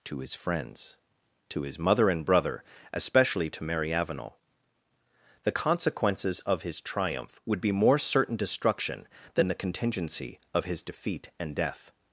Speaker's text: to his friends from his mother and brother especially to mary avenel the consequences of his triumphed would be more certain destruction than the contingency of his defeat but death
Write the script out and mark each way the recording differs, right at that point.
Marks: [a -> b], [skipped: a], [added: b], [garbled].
to his friends [from -> to] his mother and brother especially to mary avenel the consequences of his [triumphed -> triumph] would be more certain destruction than the contingency of his defeat [but -> and] death